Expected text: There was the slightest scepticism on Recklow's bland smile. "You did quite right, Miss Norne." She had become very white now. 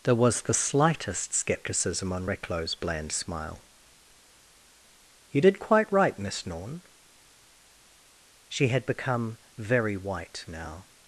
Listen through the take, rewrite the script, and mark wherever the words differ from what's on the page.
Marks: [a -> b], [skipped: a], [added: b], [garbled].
There was the slightest scepticism on Recklow's bland smile. "You did quite right, Miss Norne." She had become very white now.